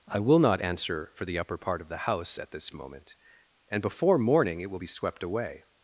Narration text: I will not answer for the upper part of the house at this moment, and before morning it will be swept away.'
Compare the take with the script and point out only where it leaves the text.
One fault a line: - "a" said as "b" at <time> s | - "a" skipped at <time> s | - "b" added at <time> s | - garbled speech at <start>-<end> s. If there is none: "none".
none